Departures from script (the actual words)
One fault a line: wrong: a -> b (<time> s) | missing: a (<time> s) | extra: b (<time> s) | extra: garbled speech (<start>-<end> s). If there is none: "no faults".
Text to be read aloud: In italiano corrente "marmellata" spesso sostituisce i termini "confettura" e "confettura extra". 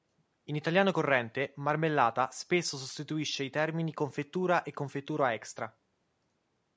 no faults